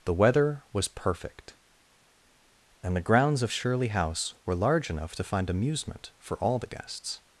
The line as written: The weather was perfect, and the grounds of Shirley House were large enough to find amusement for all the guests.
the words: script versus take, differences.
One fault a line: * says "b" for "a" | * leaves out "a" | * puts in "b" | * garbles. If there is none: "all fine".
all fine